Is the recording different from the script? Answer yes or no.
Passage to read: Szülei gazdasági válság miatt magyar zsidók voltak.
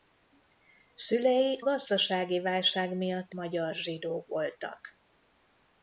no